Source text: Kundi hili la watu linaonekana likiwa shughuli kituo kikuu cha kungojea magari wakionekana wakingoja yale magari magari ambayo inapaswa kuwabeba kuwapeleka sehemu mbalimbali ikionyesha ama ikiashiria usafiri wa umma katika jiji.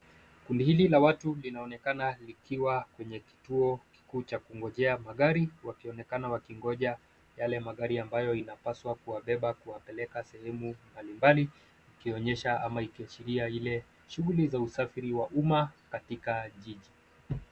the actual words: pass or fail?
fail